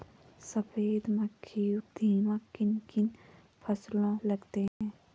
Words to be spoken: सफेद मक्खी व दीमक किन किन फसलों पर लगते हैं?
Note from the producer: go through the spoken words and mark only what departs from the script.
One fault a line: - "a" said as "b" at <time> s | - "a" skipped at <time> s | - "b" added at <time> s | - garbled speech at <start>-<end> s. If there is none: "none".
- "व" skipped at 1.8 s
- "पर" skipped at 4.2 s